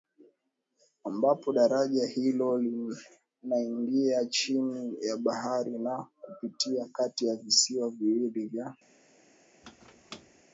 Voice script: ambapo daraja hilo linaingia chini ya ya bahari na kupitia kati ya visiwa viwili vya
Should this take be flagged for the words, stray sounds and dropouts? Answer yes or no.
yes